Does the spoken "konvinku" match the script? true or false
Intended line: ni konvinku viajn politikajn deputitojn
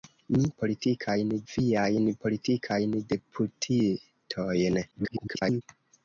false